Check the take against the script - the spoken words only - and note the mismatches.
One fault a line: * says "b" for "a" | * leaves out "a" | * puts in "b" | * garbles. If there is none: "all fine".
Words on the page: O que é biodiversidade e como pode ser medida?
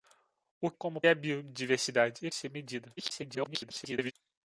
* says "como" for "que"
* leaves out "como pode"
* garbles